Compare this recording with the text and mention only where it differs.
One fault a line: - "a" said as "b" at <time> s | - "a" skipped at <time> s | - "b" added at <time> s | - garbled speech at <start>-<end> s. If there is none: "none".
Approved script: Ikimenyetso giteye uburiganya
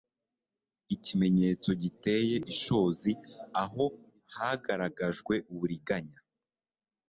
- "ishozi aho hagaragajwe" added at 2.5 s